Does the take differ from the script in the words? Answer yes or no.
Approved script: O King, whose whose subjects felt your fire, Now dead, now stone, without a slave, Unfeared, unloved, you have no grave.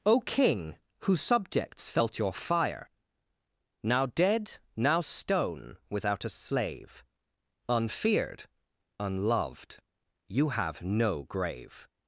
yes